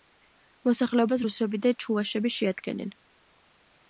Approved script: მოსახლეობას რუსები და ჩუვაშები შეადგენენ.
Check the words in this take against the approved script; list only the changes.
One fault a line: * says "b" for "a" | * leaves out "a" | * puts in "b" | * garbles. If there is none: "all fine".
all fine